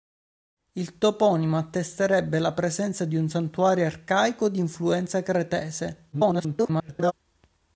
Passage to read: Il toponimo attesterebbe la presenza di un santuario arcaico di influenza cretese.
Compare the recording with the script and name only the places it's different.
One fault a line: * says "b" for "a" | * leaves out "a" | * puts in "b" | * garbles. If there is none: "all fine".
* garbles